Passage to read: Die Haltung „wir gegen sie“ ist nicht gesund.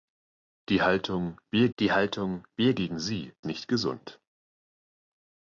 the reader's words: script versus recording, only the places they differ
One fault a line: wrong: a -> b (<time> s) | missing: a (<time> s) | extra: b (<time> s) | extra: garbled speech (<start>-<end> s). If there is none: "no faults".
extra: die Haltung wir (1.8 s)
missing: ist (3.3 s)